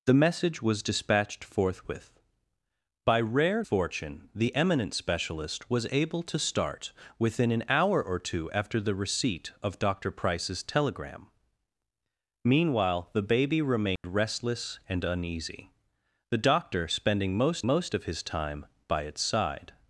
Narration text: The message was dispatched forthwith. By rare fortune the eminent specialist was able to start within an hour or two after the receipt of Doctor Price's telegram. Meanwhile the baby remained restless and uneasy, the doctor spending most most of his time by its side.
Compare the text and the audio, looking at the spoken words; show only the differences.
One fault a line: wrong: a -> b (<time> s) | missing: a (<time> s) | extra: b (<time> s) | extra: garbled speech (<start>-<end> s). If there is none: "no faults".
no faults